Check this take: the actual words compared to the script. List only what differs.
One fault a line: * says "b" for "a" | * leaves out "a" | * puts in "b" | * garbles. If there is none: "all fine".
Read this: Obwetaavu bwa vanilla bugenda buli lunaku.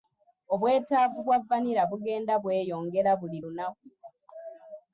* puts in "bweyongera"